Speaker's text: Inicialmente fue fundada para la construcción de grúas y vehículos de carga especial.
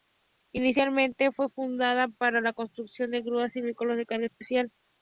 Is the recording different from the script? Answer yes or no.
no